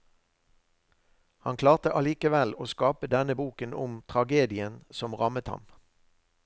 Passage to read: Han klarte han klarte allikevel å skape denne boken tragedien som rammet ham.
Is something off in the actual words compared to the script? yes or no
yes